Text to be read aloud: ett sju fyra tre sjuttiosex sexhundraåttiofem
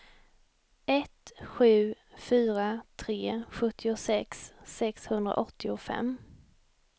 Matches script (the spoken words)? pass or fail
pass